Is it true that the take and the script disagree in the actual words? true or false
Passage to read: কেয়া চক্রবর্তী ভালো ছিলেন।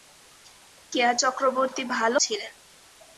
false